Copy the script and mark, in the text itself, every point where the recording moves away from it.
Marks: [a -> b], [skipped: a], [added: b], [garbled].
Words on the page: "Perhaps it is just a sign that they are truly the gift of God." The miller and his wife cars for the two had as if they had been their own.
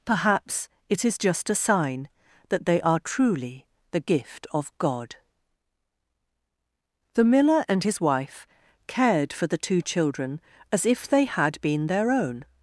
"Perhaps it is just a sign that they are truly the gift of God." The miller and his wife [cars -> cared] for the two [had -> children] as if they had been their own.